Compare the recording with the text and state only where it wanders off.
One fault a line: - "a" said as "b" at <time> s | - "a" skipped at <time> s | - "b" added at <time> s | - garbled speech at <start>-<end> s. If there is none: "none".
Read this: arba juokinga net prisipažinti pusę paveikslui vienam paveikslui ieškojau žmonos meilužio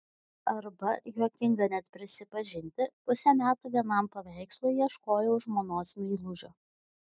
- "paveikslui" said as "metų" at 3.4 s